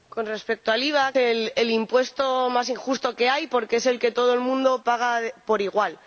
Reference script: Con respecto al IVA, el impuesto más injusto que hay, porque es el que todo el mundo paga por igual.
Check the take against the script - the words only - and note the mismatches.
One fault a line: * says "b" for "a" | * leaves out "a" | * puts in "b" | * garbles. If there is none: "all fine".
all fine